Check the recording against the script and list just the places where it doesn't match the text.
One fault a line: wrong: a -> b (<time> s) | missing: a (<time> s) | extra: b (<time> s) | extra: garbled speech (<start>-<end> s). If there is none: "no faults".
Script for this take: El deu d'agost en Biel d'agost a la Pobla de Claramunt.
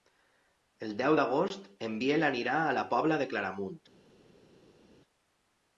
wrong: d'agost -> anirà (2.3 s)